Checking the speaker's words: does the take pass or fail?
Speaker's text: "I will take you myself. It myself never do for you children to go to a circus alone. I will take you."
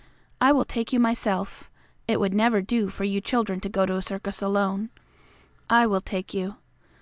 fail